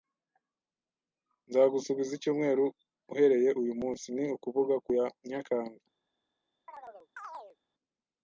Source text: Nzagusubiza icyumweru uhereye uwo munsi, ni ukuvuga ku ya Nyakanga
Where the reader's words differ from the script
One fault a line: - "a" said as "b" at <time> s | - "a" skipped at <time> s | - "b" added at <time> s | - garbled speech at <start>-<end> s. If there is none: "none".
- "uwo" said as "uyu" at 3.6 s